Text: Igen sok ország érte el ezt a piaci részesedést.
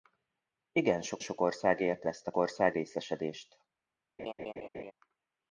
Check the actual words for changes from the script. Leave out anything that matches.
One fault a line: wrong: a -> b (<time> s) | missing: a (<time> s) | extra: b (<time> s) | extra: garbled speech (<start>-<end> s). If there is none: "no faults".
extra: sok (1.2 s)
missing: el (2.1 s)
wrong: piaci -> ország (2.4 s)